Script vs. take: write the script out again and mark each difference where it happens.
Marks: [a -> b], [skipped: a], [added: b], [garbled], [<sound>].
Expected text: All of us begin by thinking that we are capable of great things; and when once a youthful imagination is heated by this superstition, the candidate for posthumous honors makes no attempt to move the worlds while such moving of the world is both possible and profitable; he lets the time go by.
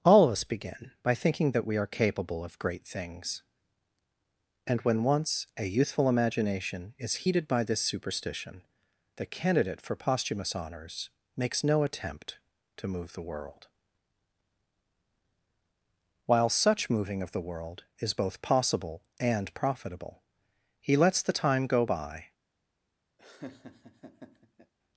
All of us begin by thinking that we are capable of great things; and when once a youthful imagination is heated by this superstition, the candidate for posthumous honors makes no attempt to move the [worlds -> world] while such moving of the world is both possible and profitable; he lets the time go by. [laugh]